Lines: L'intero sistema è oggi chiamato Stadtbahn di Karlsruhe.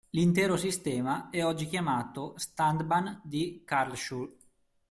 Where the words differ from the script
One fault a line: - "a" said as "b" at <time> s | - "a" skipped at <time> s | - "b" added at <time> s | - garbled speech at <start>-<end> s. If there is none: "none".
none